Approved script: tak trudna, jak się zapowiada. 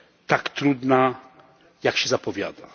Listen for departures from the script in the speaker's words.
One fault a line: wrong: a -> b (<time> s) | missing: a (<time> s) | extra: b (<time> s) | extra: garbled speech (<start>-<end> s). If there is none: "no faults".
no faults